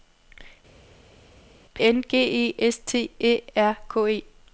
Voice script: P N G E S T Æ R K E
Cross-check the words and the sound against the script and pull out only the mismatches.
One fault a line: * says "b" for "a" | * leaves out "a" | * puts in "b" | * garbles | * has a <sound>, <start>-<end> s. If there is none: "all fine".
all fine